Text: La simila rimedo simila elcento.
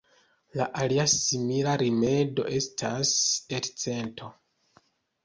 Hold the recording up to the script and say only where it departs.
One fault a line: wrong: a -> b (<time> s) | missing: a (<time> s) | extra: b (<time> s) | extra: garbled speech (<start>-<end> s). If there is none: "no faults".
extra: alia (0.8 s)
wrong: simila -> estas (2.6 s)